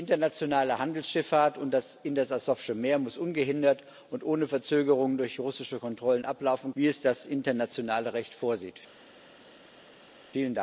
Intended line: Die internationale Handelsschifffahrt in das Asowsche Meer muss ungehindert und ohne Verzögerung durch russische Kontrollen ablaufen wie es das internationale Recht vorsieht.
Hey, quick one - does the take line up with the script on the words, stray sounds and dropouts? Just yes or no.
yes